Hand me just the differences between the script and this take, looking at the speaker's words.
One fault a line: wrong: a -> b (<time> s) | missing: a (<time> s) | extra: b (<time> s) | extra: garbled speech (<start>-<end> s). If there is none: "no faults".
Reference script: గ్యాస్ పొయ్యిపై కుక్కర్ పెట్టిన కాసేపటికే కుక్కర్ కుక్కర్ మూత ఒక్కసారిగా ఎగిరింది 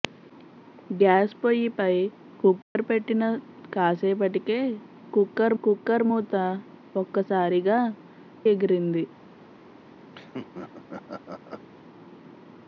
no faults